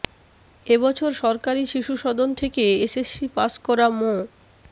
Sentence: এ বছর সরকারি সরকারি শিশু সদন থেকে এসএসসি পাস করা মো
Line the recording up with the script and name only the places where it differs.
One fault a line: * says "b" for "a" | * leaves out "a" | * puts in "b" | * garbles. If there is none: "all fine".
* leaves out "সরকারি"